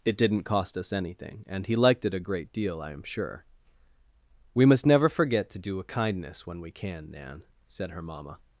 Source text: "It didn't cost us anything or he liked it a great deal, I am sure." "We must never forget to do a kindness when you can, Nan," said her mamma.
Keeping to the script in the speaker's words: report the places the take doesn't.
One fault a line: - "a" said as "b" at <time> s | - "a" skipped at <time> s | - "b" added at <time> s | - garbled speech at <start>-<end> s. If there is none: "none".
- "or" said as "and" at 1.5 s
- "you" said as "we" at 6.6 s